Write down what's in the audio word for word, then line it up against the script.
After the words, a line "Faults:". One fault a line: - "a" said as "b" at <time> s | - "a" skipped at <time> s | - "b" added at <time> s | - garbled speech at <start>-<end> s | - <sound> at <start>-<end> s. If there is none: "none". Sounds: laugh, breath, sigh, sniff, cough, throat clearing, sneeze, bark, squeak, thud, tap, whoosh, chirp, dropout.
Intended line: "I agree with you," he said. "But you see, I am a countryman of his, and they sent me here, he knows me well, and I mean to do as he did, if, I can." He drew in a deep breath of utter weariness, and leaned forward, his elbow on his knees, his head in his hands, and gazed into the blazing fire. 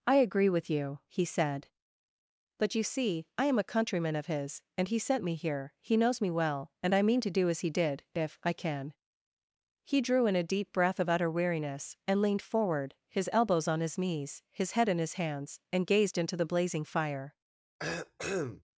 "I agree with you," he said. "But you see, I am a countryman of his, and he sent me here, he knows me well, and I mean to do as he did, if, I can." He drew in a deep breath of utter weariness, and leaned forward, his elbows on his knees, his head in his hands, and gazed into the blazing fire.
Faults:
- "they" said as "he" at 4.9 s
- "elbow" said as "elbows" at 13.3 s
- cough at 17.8-18.6 s